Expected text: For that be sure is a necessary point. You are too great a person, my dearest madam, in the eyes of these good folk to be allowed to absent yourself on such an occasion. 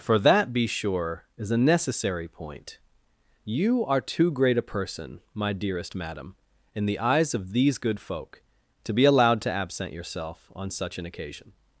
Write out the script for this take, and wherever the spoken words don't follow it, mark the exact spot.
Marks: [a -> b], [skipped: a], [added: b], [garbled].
For that be sure is a necessary point. You are too great a person, my dearest madam, in the eyes of these good folk to be allowed to absent yourself on such an occasion.